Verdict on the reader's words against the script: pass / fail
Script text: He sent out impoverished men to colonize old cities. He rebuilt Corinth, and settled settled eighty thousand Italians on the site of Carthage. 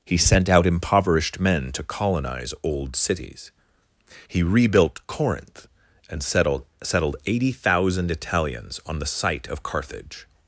pass